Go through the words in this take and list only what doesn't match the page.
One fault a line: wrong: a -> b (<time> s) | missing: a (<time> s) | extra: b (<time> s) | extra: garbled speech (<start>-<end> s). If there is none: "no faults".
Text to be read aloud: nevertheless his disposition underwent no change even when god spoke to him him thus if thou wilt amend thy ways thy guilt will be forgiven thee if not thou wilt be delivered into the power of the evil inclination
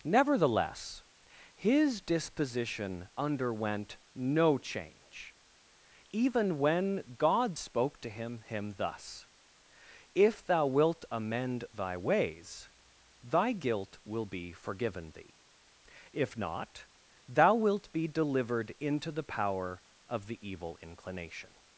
no faults